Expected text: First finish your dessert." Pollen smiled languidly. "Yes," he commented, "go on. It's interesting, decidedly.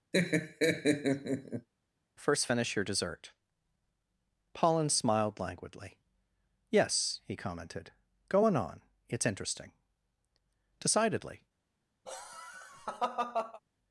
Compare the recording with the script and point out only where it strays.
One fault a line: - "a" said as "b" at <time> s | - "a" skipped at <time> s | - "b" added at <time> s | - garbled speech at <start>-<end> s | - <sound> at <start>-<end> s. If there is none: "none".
- laugh at 0.1-1.7 s
- "on" added at 8.6 s
- laugh at 12.0-13.6 s